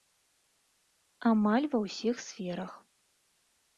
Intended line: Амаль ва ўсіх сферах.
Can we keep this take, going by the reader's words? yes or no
yes